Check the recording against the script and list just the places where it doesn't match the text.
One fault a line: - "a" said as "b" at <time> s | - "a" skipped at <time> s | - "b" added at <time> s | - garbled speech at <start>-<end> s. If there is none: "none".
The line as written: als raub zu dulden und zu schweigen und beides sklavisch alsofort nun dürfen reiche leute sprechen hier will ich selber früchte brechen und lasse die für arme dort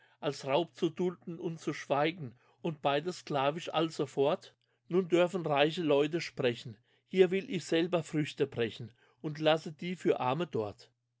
none